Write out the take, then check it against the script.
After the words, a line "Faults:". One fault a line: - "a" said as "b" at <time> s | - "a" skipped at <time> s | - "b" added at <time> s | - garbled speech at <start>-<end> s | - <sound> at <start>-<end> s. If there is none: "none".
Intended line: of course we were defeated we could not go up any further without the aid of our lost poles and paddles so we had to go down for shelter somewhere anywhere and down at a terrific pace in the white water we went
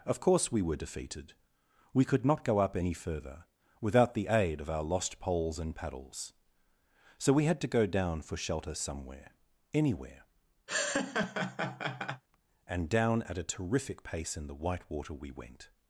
of course we were defeated we could not go up any further without the aid of our lost poles and paddles so we had to go down for shelter somewhere anywhere and down at a terrific pace in the white water we went
Faults:
- laugh at 10.7-12.2 s